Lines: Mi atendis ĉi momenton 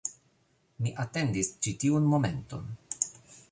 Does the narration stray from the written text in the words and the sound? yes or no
yes